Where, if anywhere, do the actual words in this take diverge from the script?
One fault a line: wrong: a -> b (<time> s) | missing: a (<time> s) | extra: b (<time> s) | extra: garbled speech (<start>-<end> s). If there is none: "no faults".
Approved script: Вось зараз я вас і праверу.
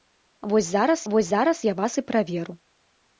extra: вось зараз (1.1 s)